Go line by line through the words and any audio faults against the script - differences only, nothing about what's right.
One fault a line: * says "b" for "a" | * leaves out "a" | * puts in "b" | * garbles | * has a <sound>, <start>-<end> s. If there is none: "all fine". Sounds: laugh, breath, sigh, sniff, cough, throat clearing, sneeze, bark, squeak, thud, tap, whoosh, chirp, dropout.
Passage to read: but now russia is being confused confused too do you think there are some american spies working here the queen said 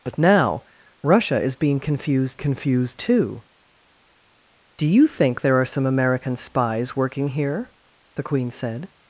all fine